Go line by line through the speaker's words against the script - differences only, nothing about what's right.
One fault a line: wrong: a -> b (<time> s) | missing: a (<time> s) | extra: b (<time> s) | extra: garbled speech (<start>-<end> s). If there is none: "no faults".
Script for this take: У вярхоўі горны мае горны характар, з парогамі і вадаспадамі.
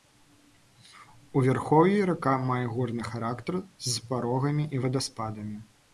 wrong: горны -> рака (2.1 s)